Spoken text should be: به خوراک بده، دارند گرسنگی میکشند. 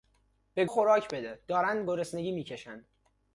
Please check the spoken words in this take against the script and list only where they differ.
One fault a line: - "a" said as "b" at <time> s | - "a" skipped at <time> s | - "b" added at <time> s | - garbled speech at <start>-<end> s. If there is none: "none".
none